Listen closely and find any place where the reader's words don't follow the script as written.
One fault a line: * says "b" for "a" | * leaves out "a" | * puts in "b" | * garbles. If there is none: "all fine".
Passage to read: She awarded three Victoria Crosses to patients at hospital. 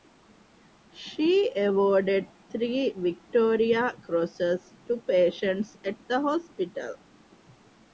* puts in "the"